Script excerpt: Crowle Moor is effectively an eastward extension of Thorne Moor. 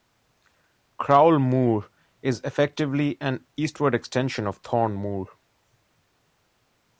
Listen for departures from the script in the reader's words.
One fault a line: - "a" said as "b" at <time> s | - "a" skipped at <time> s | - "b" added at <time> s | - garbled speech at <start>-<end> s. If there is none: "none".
none